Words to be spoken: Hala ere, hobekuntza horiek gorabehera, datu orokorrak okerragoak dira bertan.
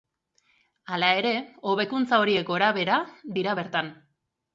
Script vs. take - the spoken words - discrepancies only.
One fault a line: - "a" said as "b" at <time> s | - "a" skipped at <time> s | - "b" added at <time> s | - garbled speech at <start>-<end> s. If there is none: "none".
- "datu orokorrak okerragoak" skipped at 3.0 s